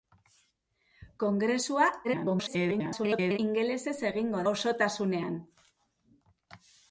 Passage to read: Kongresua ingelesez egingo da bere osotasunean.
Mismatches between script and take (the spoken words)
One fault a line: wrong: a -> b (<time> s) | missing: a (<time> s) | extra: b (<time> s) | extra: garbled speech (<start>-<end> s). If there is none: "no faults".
extra: garbled speech (2.0-3.4 s)
missing: da bere (4.5 s)